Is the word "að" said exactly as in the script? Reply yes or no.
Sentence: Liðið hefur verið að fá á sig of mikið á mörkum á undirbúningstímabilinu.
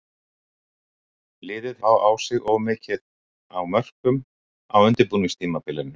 no